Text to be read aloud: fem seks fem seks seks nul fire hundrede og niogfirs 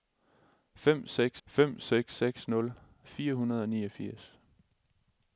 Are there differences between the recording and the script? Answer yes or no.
no